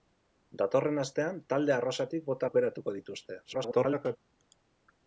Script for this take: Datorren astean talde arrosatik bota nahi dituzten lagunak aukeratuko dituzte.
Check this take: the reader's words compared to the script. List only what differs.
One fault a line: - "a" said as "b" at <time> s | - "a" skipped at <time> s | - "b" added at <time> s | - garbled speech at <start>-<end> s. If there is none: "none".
- "nahi dituzten lagunak" skipped at 2.5 s
- garbled speech at 3.4-4.2 s